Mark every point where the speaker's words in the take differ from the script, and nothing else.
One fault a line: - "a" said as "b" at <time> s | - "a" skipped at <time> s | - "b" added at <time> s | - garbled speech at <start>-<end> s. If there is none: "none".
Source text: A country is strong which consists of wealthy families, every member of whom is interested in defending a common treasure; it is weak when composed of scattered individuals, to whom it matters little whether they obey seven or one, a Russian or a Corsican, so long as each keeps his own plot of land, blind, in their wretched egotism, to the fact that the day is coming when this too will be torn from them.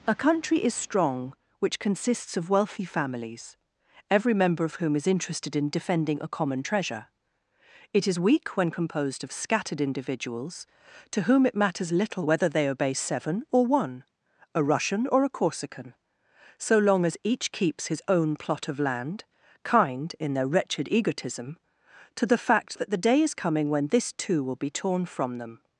- "blind" said as "kind" at 19.6 s